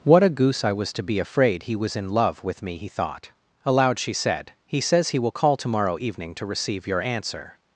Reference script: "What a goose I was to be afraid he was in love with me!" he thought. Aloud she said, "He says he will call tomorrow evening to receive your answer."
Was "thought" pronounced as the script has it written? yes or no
yes